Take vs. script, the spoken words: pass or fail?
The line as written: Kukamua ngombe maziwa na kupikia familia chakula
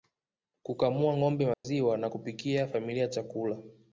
pass